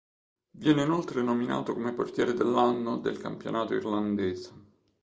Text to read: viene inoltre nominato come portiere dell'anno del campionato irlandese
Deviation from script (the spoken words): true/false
false